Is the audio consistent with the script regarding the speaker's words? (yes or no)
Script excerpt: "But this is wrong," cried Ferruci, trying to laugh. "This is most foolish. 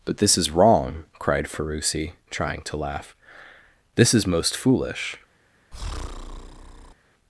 yes